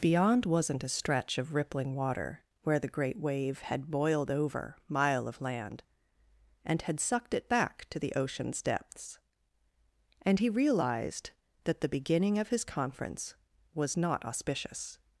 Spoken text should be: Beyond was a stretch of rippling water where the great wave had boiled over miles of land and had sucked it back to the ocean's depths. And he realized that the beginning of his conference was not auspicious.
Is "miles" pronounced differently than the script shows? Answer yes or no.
yes